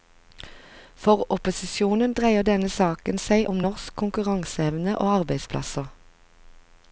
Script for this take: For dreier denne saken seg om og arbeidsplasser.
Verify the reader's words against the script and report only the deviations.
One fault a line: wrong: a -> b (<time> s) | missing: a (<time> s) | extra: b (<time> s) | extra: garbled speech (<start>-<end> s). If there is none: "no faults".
extra: opposisjonen (1.4 s)
extra: norsk konkurranseevne (3.7 s)